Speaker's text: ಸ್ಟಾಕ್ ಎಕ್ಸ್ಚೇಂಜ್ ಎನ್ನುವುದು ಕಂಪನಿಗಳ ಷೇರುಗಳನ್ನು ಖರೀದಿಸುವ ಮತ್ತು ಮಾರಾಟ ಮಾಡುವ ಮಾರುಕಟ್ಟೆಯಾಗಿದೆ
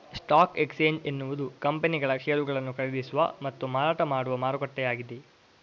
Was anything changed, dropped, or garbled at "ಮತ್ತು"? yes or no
no